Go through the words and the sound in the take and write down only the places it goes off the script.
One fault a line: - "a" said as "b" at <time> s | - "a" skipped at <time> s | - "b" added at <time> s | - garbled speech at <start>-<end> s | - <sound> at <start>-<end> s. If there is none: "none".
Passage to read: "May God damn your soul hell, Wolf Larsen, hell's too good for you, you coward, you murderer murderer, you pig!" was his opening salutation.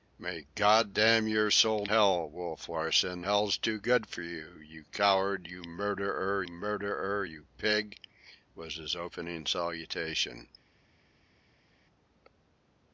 none